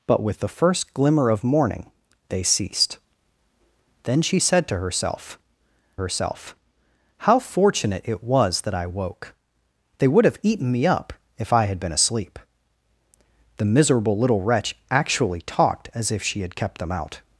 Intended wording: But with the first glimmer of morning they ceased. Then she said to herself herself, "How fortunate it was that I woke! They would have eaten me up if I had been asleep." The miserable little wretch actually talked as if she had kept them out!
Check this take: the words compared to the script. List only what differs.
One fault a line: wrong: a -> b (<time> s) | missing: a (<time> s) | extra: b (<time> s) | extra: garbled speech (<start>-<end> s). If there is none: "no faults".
no faults